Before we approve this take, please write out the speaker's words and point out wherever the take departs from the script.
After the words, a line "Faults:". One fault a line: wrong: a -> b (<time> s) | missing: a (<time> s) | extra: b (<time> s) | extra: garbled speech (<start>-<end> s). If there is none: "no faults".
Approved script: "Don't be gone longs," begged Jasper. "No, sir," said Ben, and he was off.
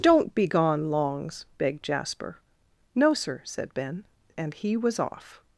"Don't be gone longs," begged Jasper. "No, sir," said Ben, and he was off.
Faults:
no faults